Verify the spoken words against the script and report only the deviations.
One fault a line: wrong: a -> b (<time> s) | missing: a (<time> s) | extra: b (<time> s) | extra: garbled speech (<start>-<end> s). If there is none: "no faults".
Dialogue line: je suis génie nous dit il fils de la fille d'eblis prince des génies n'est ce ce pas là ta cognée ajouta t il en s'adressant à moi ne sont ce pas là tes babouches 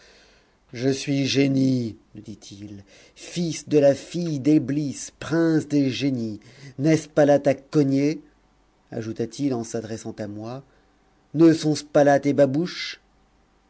missing: ce (7.1 s)